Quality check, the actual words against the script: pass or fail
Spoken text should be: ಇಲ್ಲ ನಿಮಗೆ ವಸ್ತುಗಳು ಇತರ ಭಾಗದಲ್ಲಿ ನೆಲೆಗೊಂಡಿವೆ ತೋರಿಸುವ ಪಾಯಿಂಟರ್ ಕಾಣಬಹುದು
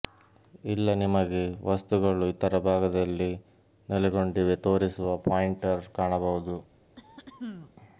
pass